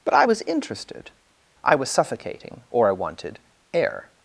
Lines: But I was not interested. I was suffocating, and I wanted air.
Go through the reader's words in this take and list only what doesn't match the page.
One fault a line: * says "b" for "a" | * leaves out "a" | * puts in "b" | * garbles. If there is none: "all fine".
* leaves out "not"
* says "or" for "and"